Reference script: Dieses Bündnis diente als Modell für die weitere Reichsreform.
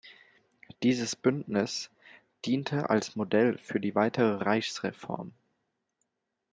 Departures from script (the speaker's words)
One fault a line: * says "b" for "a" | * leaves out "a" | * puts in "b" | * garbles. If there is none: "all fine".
all fine